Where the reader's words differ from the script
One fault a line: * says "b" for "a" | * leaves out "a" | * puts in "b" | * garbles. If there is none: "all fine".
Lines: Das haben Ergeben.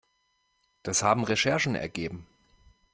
* puts in "Recherchen"